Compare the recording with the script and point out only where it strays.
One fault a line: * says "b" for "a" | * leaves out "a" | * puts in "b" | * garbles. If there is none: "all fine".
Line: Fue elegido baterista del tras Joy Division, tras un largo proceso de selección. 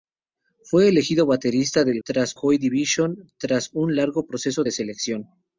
all fine